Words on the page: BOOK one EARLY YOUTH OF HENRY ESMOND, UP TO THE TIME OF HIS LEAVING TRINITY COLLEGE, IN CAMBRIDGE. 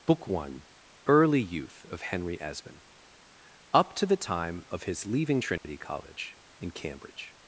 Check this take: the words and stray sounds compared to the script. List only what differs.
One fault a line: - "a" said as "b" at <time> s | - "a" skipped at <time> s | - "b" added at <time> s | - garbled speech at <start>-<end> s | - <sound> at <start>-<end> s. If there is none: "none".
- dropout at 5.6-5.6 s